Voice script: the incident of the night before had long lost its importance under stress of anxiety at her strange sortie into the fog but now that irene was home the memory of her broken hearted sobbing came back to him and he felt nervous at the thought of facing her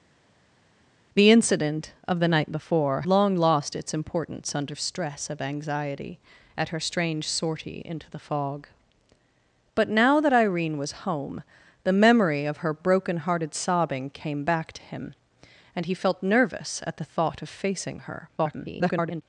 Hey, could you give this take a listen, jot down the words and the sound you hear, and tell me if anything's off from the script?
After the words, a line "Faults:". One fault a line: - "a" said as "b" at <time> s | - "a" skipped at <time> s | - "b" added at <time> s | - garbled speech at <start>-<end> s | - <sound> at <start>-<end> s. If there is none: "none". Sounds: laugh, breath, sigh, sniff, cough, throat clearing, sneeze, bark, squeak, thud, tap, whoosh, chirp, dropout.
the incident of the night before long lost its importance under stress of anxiety at her strange sortie into the fog but now that irene was home the memory of her broken hearted sobbing came back to him and he felt nervous at the thought of facing her [garbled]
Faults:
- "had" skipped at 3.0 s
- garbled speech at 18.4-19.2 s